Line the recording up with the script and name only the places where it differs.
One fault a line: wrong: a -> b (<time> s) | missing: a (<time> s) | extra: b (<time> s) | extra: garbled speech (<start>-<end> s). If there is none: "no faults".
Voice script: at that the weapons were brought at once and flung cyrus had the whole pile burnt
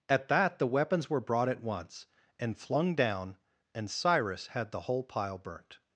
extra: down and (3.0 s)